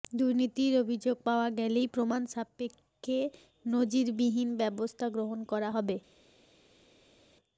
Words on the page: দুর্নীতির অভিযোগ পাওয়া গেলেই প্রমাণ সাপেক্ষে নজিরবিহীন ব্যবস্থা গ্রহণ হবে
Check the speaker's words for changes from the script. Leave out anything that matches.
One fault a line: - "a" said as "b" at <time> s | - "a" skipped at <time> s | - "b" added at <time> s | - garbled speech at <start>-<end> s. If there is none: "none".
- "করা" added at 5.5 s